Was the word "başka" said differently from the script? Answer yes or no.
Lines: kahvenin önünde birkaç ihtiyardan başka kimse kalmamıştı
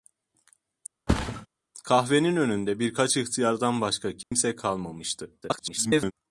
no